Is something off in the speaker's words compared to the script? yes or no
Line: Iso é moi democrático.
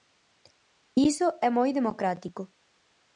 no